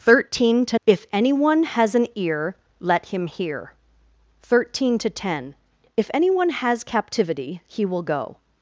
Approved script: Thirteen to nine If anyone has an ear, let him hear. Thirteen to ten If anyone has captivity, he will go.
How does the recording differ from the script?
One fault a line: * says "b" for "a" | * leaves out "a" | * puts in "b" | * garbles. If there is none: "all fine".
* leaves out "nine"